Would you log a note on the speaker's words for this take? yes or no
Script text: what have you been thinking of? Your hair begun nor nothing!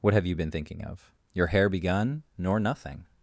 no